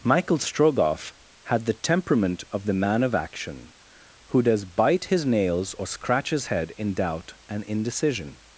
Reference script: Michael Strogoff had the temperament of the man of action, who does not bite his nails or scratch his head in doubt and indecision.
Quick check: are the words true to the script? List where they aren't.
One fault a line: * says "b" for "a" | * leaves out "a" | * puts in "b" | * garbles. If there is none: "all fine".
* leaves out "not"